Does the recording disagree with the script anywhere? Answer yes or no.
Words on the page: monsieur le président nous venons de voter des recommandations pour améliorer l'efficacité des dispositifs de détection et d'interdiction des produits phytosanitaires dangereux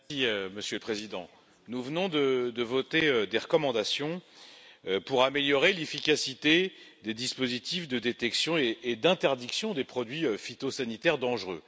no